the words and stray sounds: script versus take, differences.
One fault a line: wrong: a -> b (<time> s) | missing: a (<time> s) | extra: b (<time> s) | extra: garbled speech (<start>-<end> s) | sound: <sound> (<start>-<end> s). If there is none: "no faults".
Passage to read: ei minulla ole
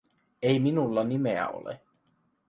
extra: nimeä (1.0 s)